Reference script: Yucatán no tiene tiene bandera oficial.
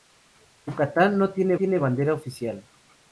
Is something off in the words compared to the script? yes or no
no